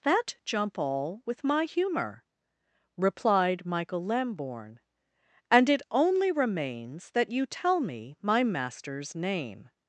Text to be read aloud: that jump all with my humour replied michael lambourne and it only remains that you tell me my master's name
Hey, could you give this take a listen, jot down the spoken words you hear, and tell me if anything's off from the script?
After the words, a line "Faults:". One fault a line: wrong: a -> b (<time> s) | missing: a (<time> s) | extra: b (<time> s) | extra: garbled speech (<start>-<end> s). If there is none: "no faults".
that jump all with my humour replied michael lambourne and it only remains that you tell me my master's name
Faults:
no faults